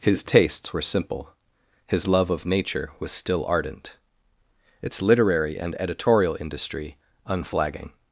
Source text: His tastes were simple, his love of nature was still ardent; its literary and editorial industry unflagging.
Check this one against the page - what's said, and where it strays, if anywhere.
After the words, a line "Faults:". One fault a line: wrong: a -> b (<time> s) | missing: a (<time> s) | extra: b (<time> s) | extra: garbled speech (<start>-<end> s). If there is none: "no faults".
His tastes were simple, his love of nature was still ardent; its literary and editorial industry unflagging.
Faults:
no faults